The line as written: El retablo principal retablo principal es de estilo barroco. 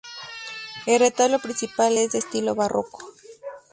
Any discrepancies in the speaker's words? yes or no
yes